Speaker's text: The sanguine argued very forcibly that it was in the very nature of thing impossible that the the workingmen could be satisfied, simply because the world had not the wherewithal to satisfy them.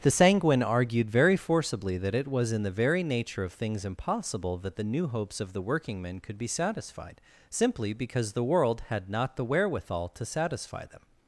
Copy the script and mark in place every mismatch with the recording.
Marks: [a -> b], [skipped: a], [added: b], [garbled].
The sanguine argued very forcibly that it was in the very nature of [thing -> things] impossible that the [added: new hopes of] the workingmen could be satisfied, simply because the world had not the wherewithal to satisfy them.